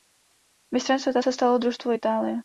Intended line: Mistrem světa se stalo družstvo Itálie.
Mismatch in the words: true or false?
false